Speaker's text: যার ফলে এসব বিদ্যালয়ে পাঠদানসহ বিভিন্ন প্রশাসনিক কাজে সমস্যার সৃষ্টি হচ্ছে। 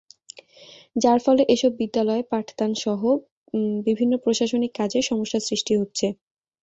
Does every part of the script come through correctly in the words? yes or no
yes